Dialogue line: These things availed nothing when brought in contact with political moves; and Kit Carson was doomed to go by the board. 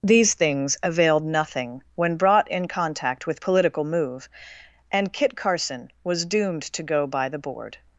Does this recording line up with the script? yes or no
no